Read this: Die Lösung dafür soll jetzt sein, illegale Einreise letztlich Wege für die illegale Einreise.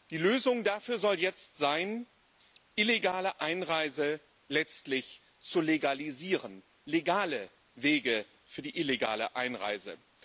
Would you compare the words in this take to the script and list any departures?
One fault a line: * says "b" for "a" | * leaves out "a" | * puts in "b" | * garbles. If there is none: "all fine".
* puts in "zu legalisieren legale"